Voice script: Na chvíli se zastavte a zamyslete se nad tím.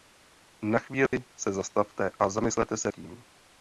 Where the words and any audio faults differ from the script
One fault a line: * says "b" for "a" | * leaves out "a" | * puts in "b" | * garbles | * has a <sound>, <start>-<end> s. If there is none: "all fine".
* has a dropout, 1.1-1.1 s
* leaves out "nad"